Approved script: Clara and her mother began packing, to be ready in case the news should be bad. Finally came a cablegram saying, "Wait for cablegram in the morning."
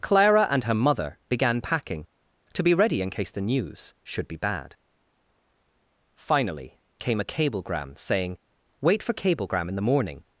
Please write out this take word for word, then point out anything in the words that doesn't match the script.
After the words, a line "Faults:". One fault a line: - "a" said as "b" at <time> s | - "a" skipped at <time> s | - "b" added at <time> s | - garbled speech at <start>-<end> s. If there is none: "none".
Clara and her mother began packing, to be ready in case the news should be bad. Finally came a cablegram saying, "Wait for cablegram in the morning."
Faults:
none